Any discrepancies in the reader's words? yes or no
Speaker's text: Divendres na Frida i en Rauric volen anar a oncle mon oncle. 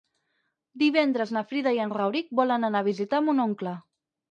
yes